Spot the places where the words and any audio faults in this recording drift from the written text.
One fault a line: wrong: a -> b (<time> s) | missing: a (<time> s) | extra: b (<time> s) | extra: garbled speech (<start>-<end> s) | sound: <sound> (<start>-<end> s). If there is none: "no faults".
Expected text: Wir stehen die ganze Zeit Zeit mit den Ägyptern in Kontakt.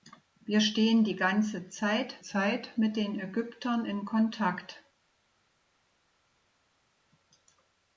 no faults